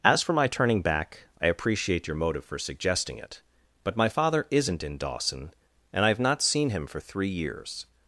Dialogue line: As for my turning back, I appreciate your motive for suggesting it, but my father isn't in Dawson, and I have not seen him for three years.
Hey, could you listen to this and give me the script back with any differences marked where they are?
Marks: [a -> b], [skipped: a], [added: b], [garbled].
As for my turning back, I appreciate your motive for suggesting it, but my father isn't in Dawson, and I have not seen him for three years.